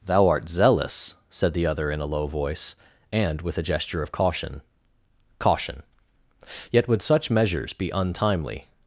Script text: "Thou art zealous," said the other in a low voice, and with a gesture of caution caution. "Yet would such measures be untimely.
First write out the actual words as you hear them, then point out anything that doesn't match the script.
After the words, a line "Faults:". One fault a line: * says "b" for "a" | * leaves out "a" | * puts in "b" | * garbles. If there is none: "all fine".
"Thou art zealous," said the other in a low voice, and with a gesture of caution caution. "Yet would such measures be untimely.
Faults:
all fine